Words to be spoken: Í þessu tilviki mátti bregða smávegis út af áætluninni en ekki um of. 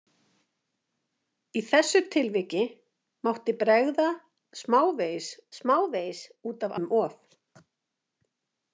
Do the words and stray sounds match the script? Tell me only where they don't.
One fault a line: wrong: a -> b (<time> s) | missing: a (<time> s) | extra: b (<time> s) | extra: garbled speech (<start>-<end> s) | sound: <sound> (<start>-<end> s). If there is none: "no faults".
extra: smávegis (5.6 s)
missing: áætluninni en ekki (6.8 s)